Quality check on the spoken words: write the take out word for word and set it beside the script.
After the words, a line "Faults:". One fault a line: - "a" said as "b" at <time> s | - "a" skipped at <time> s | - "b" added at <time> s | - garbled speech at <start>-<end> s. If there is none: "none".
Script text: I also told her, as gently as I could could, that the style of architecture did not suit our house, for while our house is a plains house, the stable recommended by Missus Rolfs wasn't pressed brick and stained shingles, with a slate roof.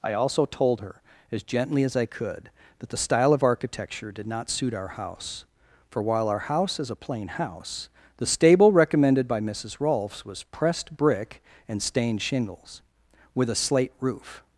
I also told her, as gently as I could, that the style of architecture did not suit our house, for while our house is a plain house, the stable recommended by Missus Rolfs was pressed brick and stained shingles, with a slate roof.
Faults:
- "could" skipped at 2.5 s
- "plains" said as "plain" at 7.0 s
- "wasn't" said as "was" at 10.2 s